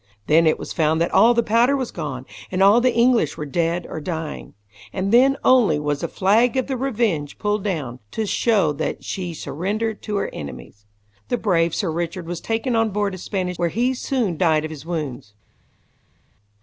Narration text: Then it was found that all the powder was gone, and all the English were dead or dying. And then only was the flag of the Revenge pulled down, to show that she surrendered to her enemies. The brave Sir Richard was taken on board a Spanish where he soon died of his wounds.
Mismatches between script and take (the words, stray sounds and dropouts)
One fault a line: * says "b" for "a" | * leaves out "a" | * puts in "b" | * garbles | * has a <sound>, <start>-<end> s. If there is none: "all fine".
all fine